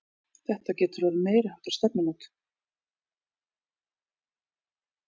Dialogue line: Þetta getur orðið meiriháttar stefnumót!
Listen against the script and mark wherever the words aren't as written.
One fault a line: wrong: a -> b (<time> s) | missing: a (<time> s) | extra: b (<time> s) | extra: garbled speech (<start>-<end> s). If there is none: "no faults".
no faults